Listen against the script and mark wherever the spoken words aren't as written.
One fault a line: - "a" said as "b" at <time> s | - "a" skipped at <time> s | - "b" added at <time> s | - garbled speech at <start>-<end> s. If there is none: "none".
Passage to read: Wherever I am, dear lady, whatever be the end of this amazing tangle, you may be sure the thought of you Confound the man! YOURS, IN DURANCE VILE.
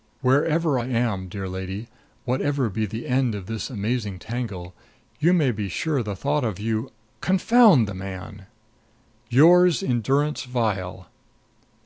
none